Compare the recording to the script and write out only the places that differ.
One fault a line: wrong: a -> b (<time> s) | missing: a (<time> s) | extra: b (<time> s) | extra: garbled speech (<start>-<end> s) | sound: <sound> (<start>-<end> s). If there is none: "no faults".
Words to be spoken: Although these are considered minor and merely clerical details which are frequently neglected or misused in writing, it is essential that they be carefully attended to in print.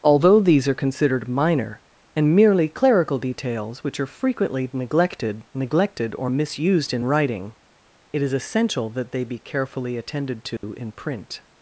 extra: neglected (5.5 s)
sound: dropout (10.6-10.6 s)